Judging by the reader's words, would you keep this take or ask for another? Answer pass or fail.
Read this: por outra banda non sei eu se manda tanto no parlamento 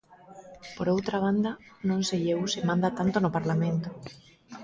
pass